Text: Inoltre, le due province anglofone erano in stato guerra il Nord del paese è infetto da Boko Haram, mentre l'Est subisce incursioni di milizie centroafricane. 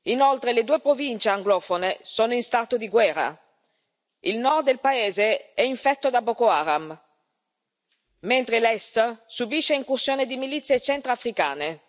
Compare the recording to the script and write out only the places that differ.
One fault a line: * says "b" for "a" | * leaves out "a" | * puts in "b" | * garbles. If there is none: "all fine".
* says "sono" for "erano"
* puts in "di"